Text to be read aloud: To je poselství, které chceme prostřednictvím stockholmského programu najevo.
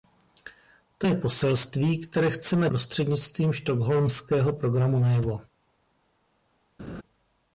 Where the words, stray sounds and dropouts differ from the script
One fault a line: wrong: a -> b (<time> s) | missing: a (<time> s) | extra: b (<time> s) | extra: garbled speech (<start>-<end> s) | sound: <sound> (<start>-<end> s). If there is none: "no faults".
sound: laugh (6.8-7.0 s)